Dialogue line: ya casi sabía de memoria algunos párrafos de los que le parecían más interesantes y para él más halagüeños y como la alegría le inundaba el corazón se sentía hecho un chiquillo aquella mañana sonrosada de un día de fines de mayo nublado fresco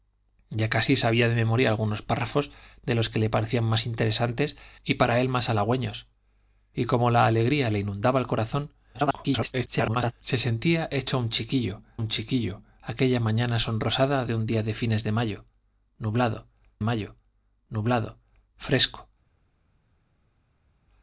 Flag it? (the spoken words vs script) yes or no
yes